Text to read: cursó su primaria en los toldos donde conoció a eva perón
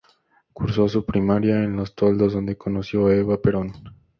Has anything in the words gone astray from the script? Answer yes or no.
no